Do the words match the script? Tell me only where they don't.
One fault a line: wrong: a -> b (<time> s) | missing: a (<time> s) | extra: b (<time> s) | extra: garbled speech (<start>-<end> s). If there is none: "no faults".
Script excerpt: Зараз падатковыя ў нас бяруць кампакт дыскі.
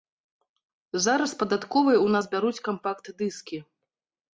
no faults